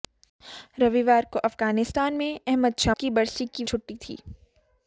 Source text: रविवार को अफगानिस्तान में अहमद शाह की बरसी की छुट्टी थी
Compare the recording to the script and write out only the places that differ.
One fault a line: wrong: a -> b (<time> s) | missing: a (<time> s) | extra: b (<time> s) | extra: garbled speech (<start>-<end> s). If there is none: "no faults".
no faults